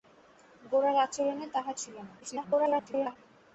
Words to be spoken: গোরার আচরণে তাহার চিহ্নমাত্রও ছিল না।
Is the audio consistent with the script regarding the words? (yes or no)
no